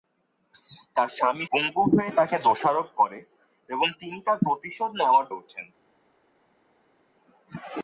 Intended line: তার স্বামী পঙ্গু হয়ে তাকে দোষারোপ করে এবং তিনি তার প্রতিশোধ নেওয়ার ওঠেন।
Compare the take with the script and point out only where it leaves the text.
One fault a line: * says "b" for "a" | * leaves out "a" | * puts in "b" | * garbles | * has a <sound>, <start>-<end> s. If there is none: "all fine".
all fine